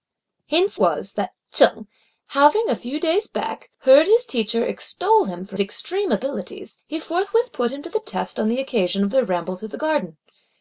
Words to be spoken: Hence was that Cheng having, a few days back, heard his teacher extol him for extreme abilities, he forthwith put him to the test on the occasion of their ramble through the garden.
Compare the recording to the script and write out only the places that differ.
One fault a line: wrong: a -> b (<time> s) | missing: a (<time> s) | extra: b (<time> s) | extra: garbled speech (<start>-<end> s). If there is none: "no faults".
no faults